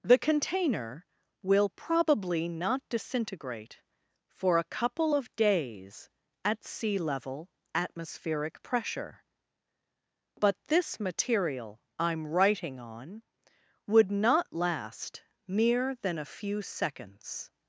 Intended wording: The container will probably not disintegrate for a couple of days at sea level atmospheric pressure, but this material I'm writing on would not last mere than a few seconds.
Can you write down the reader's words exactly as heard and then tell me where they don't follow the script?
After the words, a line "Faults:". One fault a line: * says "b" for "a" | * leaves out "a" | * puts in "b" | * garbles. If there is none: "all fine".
The container will probably not disintegrate for a couple of days at sea level atmospheric pressure, but this material I'm writing on would not last mere than a few seconds.
Faults:
all fine